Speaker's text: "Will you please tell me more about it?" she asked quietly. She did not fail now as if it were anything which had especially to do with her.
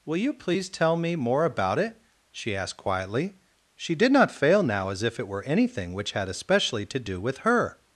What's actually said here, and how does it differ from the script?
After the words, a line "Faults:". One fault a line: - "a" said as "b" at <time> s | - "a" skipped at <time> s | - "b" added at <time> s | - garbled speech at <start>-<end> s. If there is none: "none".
"Will you please tell me more about it?" she asked quietly. She did not fail now as if it were anything which had especially to do with her.
Faults:
none